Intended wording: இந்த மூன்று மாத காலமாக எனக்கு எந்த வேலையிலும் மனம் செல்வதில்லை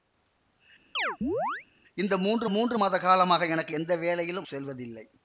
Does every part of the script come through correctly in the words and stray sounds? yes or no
no